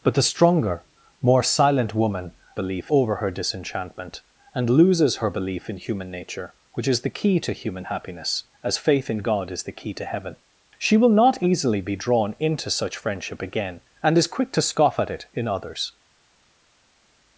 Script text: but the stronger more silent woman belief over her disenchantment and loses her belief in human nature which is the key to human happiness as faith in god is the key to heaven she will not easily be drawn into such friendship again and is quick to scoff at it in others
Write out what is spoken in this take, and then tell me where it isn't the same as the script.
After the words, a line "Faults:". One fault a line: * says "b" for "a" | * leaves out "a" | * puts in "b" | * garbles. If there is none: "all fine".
but the stronger more silent woman belief over her disenchantment and loses her belief in human nature which is the key to human happiness as faith in god is the key to heaven she will not easily be drawn into such friendship again and is quick to scoff at it in others
Faults:
all fine